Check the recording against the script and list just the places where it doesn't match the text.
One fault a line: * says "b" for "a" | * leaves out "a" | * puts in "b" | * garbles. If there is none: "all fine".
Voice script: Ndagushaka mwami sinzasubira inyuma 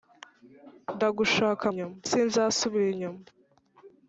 * says "inyuma" for "mwami"